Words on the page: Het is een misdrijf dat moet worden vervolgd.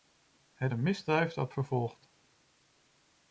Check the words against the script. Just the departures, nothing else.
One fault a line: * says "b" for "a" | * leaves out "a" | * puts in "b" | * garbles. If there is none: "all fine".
* leaves out "is"
* leaves out "moet worden"